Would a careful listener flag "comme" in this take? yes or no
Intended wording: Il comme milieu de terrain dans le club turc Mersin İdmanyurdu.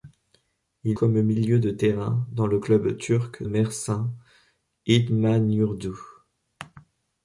no